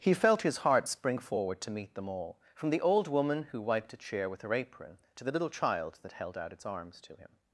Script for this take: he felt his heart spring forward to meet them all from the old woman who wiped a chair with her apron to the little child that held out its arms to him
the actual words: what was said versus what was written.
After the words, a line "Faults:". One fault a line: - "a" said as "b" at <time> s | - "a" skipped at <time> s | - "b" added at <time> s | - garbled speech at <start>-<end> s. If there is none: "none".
he felt his heart spring forward to meet them all from the old woman who wiped a chair with her apron to the little child that held out its arms to him
Faults:
none